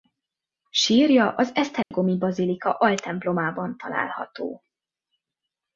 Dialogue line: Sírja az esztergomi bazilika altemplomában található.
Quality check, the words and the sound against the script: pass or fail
fail